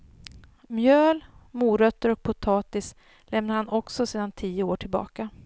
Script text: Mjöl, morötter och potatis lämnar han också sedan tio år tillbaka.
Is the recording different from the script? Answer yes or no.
no